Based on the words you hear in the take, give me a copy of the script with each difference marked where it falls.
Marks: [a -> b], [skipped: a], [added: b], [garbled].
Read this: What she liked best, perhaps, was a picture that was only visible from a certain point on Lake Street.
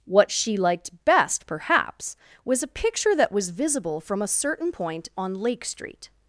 What she liked best, perhaps, was a picture that was [skipped: only] visible from a certain point on Lake Street.